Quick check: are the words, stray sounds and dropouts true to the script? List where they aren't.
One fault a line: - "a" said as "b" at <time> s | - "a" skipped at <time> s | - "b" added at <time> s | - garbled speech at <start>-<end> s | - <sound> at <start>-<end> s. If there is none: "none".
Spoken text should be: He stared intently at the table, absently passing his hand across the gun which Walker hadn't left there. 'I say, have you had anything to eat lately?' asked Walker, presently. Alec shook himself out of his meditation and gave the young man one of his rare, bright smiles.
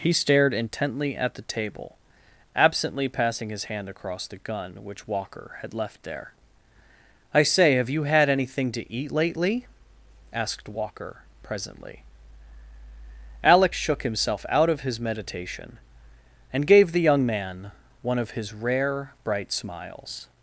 - "hadn't" said as "had" at 5.6 s